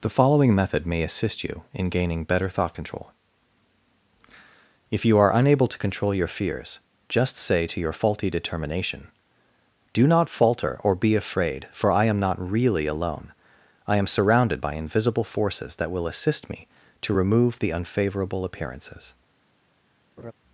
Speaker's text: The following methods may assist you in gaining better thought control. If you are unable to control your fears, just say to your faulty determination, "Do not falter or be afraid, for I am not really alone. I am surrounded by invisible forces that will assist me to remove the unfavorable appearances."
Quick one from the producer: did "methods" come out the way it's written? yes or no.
no